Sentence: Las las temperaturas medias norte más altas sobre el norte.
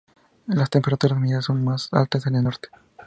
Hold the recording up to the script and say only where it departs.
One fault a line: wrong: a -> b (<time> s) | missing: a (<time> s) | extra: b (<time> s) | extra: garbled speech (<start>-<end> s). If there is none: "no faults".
missing: las (0.7 s)
wrong: norte -> son (1.4 s)
wrong: sobre -> en (2.3 s)